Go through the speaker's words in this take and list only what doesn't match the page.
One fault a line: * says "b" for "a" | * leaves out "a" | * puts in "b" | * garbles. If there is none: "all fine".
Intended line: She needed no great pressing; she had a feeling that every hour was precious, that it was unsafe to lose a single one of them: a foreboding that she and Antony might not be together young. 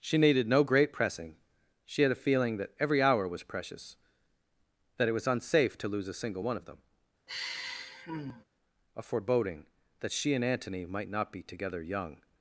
all fine